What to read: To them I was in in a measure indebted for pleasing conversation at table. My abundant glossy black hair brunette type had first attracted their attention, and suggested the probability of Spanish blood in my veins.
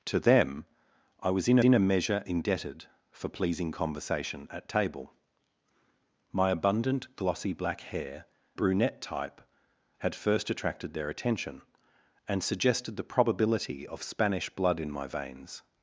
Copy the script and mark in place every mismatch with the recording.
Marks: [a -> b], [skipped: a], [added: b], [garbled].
To them I was in in a measure indebted for pleasing conversation at table. My abundant glossy black hair brunette type had first attracted their attention, and suggested the probability of Spanish blood in my veins.